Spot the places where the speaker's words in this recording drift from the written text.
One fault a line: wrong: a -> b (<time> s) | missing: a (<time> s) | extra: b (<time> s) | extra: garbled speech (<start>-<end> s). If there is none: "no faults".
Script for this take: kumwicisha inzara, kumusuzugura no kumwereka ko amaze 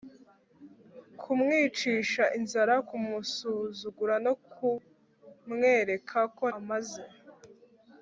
no faults